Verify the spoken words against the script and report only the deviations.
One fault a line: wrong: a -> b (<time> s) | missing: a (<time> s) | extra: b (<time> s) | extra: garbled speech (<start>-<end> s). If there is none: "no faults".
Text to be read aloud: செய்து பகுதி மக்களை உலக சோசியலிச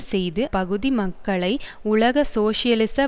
no faults